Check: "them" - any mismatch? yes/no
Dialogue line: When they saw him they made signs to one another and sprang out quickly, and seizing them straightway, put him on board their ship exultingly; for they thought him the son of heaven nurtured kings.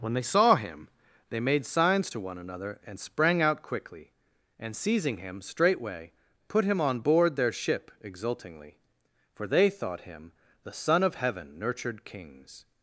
yes